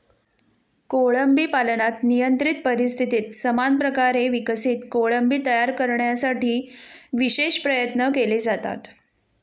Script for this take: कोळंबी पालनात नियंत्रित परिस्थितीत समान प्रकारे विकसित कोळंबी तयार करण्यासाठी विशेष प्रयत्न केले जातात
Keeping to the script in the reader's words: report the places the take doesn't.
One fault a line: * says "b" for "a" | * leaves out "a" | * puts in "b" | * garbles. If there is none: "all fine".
all fine